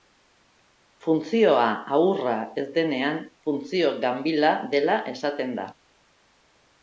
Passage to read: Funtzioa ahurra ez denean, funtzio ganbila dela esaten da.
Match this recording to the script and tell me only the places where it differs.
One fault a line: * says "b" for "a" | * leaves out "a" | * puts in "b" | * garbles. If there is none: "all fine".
all fine